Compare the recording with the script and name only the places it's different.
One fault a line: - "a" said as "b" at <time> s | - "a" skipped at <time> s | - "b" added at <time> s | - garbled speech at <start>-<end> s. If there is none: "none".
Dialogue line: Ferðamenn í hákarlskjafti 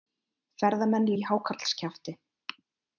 none